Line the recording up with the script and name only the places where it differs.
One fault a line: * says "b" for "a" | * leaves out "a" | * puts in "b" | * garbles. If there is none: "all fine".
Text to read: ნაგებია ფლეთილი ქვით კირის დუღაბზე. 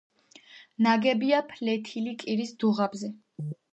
* leaves out "ქვით"